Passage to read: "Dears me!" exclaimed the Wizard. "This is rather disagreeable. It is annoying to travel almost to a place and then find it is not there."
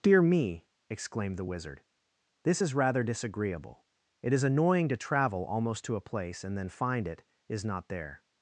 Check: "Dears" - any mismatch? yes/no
yes